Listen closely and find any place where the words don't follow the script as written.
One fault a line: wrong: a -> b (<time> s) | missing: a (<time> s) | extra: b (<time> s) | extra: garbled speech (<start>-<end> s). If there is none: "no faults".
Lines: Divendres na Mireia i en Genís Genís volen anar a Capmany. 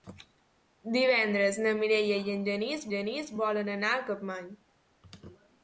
no faults